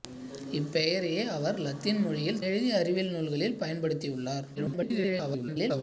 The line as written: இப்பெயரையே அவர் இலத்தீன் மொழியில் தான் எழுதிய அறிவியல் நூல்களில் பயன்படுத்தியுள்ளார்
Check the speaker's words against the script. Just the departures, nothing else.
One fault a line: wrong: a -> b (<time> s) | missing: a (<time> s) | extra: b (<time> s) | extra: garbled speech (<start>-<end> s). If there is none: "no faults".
missing: தான் (2.4 s)
extra: garbled speech (4.6-5.8 s)